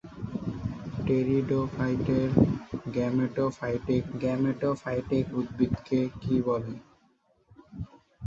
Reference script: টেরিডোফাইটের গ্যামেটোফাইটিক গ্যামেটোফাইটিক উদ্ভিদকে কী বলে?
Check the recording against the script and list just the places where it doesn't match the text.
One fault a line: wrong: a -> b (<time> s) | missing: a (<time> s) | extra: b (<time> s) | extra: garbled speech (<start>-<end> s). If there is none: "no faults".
no faults